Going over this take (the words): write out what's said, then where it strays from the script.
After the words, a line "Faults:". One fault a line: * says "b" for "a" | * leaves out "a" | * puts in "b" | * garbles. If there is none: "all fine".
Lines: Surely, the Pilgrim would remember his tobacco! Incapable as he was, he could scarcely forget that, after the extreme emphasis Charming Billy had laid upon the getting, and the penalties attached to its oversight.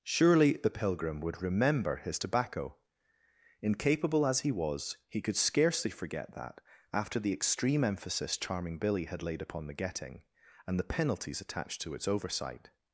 Surely, the Pilgrim would remember his tobacco! Incapable as he was, he could scarcely forget that, after the extreme emphasis Charming Billy had laid upon the getting, and the penalties attached to its oversight.
Faults:
all fine